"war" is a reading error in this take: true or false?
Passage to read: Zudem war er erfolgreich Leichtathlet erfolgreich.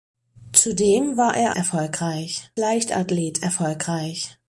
false